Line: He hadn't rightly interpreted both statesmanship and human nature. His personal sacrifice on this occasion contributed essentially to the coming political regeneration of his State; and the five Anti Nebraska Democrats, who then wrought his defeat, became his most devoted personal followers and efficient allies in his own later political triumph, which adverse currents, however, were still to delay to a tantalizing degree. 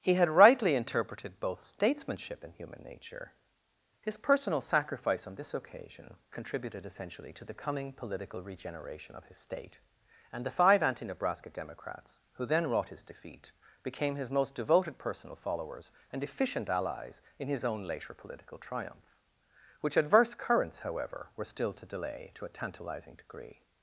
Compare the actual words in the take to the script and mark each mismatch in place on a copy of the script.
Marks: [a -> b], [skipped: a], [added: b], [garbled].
He [hadn't -> had] rightly interpreted both statesmanship and human nature. His personal sacrifice on this occasion contributed essentially to the coming political regeneration of his State; and the five Anti Nebraska Democrats, who then wrought his defeat, became his most devoted personal followers and efficient allies in his own later political triumph, which adverse currents, however, were still to delay to a tantalizing degree.